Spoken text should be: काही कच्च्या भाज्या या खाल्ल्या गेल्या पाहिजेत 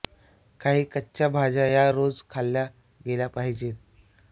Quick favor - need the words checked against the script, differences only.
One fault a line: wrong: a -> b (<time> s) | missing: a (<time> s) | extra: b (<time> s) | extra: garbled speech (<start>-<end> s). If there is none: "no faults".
extra: रोज (1.9 s)